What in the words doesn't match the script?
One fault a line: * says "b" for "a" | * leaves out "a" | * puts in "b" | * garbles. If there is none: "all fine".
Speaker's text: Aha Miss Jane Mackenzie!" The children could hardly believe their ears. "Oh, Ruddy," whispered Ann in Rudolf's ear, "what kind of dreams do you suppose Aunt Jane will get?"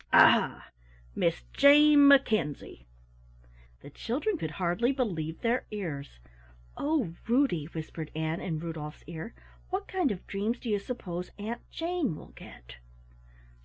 all fine